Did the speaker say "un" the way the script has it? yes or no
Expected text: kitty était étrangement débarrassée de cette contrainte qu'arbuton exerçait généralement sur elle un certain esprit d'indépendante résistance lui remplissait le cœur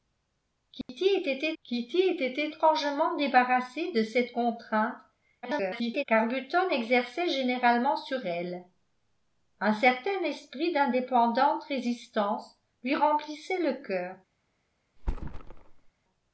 yes